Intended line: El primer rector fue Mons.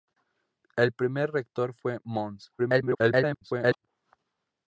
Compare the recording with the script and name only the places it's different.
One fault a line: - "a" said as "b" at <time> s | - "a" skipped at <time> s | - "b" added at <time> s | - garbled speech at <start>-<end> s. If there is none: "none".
- garbled speech at 2.6-3.9 s